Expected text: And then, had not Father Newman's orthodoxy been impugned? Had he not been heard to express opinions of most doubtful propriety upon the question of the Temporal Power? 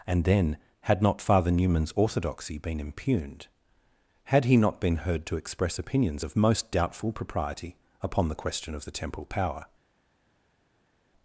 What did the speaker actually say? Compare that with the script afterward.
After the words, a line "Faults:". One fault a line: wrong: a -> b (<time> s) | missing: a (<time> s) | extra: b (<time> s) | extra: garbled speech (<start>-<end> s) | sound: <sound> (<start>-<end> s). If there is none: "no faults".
And then, had not Father Newman's orthodoxy been impugned? Had he not been heard to express opinions of most doubtful propriety upon the question of the Temporal Power?
Faults:
no faults